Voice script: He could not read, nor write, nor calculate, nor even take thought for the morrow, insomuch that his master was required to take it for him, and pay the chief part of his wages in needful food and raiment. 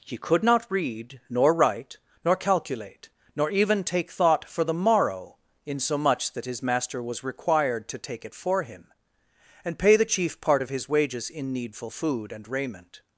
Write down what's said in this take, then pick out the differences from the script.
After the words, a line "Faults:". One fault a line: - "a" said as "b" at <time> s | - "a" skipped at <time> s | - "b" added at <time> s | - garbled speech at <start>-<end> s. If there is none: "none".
He could not read, nor write, nor calculate, nor even take thought for the morrow, insomuch that his master was required to take it for him, and pay the chief part of his wages in needful food and raiment.
Faults:
none